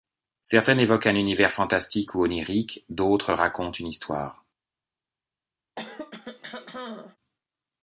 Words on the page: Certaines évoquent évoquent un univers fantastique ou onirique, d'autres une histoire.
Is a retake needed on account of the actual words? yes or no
yes